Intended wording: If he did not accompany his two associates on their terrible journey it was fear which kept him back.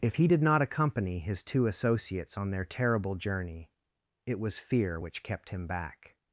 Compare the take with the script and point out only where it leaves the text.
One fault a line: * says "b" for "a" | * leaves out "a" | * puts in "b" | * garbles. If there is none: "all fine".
all fine